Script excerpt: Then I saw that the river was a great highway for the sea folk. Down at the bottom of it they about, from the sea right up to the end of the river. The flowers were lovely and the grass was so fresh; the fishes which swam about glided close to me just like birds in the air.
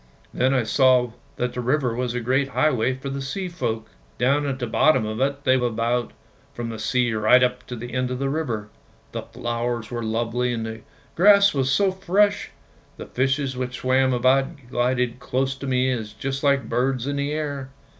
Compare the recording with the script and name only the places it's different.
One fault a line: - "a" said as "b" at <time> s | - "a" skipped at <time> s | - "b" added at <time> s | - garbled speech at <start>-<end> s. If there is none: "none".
none